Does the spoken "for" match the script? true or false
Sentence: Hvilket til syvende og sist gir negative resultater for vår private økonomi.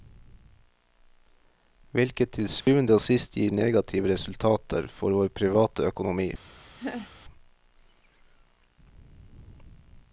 true